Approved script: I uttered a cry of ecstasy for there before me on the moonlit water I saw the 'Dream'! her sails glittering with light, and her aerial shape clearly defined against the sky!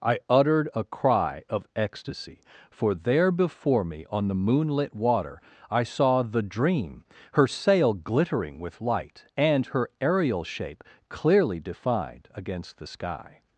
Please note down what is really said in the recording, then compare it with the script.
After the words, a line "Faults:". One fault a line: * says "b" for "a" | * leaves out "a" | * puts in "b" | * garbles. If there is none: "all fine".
I uttered a cry of ecstasy for there before me on the moonlit water I saw the 'Dream'! her sail glittering with light, and her aerial shape clearly defined against the sky!
Faults:
* says "sail" for "sails"